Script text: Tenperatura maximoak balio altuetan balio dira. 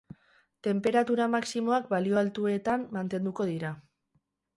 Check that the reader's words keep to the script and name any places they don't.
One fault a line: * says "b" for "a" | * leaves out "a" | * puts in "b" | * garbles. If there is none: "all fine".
* says "mantenduko" for "balio"